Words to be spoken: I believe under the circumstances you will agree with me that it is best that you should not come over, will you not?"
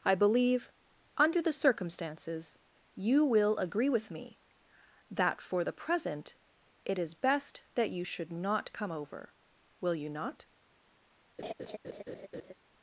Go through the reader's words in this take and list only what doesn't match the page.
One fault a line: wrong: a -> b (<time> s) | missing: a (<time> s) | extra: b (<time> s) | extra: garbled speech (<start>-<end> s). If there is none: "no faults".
extra: for the present (5.4 s)